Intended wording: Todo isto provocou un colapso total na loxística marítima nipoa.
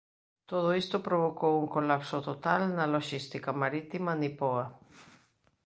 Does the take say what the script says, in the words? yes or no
yes